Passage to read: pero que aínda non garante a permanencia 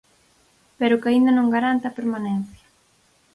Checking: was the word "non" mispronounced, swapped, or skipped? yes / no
no